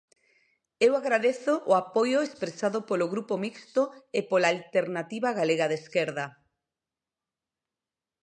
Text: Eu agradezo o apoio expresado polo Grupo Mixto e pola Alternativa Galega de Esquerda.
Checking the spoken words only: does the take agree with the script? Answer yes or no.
yes